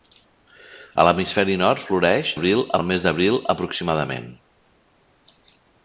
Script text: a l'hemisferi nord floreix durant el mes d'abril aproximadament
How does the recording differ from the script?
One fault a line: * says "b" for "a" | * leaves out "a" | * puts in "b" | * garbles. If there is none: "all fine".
* says "d'abril" for "durant"